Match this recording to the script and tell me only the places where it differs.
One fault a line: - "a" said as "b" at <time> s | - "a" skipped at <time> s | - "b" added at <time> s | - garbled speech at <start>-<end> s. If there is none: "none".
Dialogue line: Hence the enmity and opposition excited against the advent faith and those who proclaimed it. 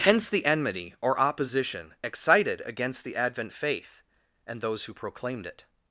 - "and" said as "or" at 1.0 s